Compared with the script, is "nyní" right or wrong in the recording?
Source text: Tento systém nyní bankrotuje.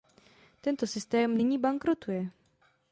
right